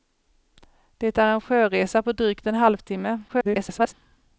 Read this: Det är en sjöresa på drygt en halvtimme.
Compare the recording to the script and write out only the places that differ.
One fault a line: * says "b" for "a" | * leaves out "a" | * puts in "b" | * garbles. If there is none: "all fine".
* garbles